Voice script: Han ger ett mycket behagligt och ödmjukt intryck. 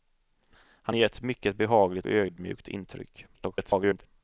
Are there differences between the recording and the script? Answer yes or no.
yes